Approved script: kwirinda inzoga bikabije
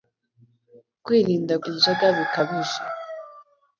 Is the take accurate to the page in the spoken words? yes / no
yes